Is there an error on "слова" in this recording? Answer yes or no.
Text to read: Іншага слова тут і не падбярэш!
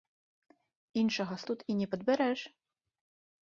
yes